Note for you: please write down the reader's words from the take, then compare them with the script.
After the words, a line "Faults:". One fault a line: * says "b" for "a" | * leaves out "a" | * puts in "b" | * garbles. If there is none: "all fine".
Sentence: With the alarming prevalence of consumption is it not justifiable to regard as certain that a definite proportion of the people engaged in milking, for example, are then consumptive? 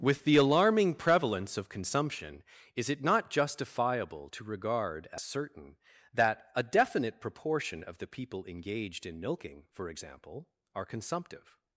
With the alarming prevalence of consumption is it not justifiable to regard as certain that a definite proportion of the people engaged in milking, for example, are consumptive?
Faults:
* leaves out "then"